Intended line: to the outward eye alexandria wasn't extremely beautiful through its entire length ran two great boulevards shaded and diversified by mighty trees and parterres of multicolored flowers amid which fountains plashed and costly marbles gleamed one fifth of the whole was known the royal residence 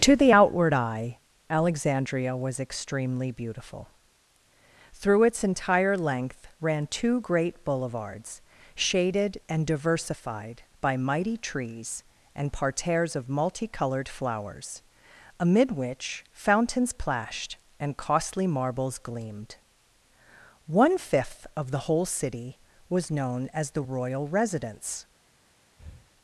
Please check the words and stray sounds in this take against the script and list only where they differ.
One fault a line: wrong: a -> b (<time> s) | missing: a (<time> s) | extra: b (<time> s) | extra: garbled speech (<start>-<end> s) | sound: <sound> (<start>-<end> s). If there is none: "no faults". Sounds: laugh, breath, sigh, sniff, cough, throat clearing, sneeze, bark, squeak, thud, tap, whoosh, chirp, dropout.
wrong: wasn't -> was (2.4 s)
extra: city (22.0 s)
extra: as (23.5 s)
sound: breath (25.8-26.1 s)